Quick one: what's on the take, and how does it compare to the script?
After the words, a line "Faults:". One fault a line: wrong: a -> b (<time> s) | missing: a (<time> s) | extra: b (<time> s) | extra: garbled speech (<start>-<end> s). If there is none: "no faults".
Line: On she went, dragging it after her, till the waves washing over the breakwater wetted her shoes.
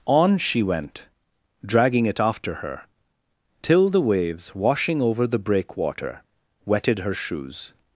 On she went, dragging it after her, till the waves washing over the breakwater wetted her shoes.
Faults:
no faults